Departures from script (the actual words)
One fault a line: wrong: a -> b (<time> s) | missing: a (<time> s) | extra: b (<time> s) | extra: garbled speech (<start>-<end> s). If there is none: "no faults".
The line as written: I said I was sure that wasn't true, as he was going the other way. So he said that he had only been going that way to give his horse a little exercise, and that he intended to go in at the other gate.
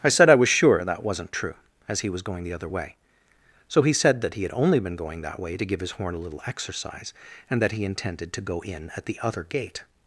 wrong: horse -> horn (5.9 s)